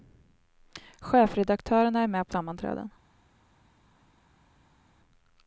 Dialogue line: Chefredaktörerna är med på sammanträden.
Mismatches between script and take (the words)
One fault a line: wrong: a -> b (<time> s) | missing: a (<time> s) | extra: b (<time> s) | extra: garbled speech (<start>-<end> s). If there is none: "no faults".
no faults